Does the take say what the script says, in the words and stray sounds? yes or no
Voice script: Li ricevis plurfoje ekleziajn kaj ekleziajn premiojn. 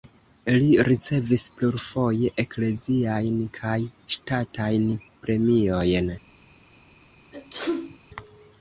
no